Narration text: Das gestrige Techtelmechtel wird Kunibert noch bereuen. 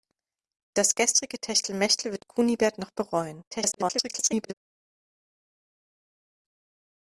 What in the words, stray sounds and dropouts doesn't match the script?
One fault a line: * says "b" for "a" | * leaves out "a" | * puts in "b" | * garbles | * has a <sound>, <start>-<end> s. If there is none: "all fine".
* garbles